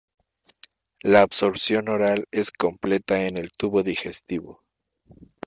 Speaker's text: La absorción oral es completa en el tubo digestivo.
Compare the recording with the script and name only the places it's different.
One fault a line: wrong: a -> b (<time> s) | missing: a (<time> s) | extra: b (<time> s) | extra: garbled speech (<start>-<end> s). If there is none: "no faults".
no faults